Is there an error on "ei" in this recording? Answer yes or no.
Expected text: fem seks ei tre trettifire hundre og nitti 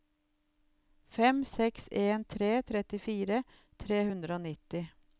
yes